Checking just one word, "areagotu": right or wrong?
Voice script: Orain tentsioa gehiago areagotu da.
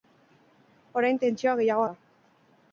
wrong